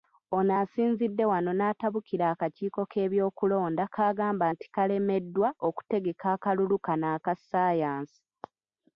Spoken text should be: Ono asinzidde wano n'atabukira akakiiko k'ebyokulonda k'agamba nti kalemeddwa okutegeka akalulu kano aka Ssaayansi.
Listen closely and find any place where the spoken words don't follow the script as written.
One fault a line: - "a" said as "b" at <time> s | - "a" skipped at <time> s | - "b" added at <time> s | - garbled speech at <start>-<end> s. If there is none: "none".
none